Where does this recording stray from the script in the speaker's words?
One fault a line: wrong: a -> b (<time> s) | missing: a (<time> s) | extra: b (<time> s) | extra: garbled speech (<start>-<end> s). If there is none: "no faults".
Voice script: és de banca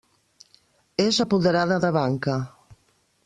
extra: apoderada (1.2 s)